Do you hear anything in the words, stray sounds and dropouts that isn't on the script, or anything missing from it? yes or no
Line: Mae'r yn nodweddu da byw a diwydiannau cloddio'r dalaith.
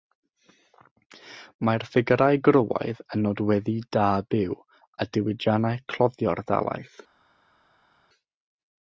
yes